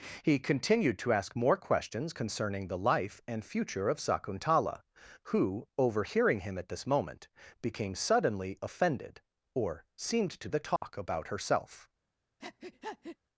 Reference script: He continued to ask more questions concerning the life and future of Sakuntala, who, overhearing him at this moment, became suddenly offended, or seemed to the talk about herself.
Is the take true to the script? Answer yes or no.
yes